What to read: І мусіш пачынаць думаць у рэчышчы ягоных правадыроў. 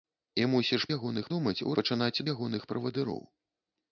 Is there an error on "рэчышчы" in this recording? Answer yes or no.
yes